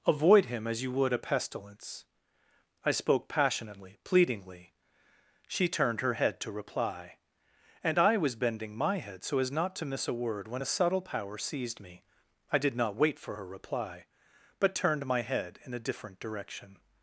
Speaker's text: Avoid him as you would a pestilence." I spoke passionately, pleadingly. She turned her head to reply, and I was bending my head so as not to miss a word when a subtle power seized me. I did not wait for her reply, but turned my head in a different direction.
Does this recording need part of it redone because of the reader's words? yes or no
no